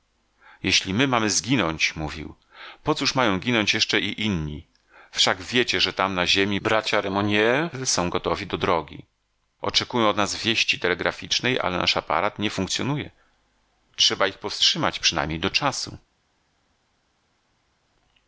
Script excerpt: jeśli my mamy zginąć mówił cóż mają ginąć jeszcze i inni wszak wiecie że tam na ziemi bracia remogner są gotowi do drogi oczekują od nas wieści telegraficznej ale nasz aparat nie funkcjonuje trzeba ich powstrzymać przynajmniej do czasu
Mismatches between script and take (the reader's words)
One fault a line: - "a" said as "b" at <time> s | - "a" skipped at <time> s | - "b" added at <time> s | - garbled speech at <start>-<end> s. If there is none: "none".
- "po" added at 2.8 s